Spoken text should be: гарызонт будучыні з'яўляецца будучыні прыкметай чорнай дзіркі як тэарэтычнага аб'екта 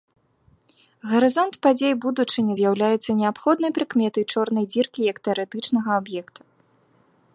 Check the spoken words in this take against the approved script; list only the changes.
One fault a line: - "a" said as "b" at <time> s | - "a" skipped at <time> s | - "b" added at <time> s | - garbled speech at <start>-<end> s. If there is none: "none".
- "падзей" added at 1.6 s
- "будучыні" said as "неабходнай" at 3.2 s